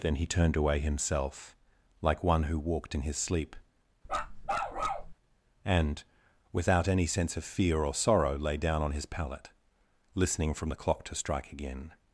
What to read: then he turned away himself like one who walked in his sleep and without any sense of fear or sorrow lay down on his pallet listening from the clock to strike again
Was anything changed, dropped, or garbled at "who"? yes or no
no